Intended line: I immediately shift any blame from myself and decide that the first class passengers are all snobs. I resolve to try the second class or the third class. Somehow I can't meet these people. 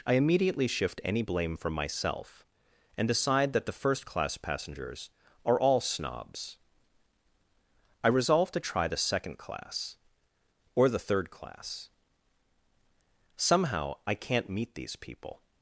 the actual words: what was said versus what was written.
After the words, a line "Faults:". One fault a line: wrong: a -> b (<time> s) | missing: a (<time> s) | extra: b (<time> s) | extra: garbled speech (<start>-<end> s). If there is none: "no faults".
I immediately shift any blame from myself and decide that the first class passengers are all snobs. I resolve to try the second class or the third class. Somehow I can't meet these people.
Faults:
no faults